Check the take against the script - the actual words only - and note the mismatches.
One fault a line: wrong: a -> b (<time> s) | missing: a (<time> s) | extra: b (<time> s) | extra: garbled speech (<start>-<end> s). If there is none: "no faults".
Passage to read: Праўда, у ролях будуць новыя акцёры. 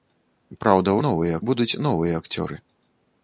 wrong: ролях -> новыя (1.1 s)